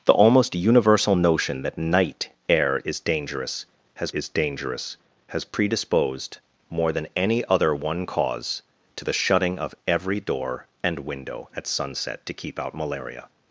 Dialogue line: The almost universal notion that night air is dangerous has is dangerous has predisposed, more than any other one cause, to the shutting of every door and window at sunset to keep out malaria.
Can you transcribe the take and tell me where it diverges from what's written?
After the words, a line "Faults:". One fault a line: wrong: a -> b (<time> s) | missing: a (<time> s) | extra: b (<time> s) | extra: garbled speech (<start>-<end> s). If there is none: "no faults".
The almost universal notion that night air is dangerous has is dangerous has predisposed, more than any other one cause, to the shutting of every door and window at sunset to keep out malaria.
Faults:
no faults